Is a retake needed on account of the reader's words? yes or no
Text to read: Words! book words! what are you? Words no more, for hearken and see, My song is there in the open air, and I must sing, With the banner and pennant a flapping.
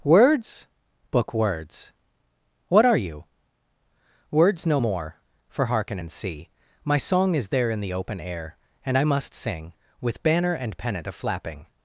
yes